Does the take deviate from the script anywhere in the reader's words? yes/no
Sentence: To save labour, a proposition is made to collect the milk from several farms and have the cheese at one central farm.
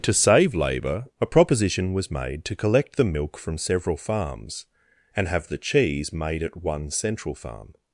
yes